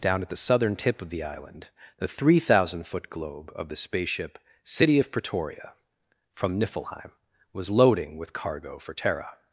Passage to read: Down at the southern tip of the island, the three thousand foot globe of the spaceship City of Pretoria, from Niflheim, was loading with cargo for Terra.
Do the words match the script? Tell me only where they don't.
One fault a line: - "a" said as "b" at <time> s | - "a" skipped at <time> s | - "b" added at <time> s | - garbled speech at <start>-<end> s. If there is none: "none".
none